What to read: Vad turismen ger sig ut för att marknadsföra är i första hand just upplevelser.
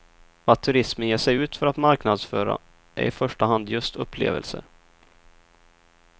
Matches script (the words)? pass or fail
pass